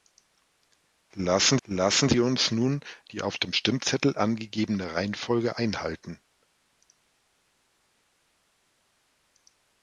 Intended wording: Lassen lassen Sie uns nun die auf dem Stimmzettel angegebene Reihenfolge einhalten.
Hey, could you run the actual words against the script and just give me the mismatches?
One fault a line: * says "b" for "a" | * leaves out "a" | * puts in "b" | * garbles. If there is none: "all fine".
all fine